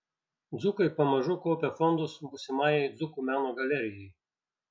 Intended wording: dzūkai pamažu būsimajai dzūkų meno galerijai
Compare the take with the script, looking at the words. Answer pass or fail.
fail